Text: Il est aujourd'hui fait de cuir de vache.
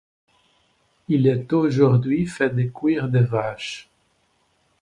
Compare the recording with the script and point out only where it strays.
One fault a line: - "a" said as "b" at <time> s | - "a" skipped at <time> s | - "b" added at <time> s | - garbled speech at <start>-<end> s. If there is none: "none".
none